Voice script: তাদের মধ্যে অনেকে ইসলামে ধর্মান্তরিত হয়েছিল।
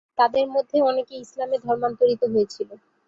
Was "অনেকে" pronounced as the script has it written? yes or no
yes